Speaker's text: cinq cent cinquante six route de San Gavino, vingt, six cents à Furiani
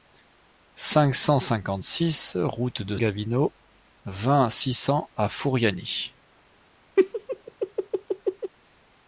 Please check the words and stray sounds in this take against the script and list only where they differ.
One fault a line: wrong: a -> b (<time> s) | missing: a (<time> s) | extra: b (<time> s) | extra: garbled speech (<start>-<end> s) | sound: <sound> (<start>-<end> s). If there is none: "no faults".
missing: San (3.0 s)
sound: laugh (7.0-8.5 s)